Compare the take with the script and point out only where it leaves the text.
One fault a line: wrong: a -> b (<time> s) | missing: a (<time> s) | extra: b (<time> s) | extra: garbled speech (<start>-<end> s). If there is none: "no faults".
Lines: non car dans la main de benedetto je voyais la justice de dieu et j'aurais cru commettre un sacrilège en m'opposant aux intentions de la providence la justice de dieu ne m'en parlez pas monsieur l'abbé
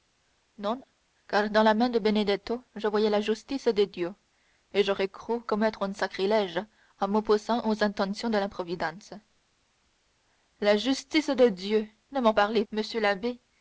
missing: pas (12.6 s)